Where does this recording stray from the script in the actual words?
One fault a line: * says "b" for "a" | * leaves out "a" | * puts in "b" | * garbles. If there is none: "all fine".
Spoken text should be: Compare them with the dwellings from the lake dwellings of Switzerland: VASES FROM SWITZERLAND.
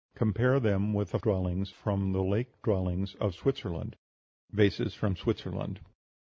all fine